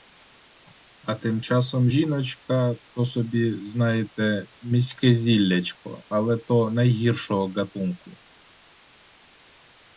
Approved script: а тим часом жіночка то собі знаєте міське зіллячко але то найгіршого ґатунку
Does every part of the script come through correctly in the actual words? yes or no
yes